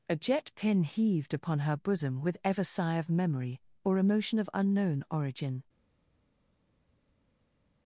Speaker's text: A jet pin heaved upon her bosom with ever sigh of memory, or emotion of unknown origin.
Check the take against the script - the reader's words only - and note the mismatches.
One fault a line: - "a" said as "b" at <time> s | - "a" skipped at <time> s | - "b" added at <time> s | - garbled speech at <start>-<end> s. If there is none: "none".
none